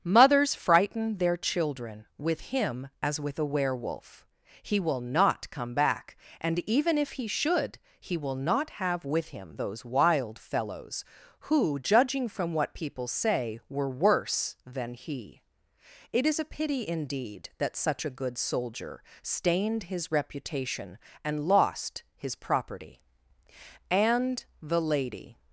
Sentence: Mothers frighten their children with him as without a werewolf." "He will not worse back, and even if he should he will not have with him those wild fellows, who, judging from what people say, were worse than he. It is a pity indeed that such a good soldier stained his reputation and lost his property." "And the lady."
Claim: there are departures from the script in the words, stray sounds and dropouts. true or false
true